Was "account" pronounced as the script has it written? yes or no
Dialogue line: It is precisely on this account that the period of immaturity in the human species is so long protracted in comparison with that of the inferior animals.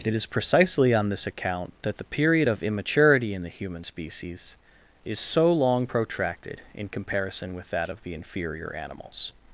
yes